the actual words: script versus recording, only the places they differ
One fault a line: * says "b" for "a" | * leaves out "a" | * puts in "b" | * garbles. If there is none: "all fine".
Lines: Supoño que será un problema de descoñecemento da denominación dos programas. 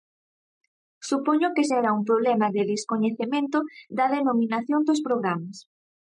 all fine